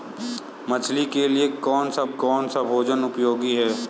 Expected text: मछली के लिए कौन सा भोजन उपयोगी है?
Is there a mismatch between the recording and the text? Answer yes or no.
yes